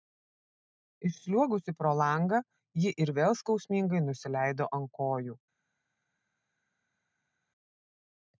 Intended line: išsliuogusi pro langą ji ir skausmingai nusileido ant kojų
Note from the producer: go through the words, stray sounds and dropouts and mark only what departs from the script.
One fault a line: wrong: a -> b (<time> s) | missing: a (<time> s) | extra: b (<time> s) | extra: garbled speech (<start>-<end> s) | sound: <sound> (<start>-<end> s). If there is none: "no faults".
extra: vėl (3.2 s)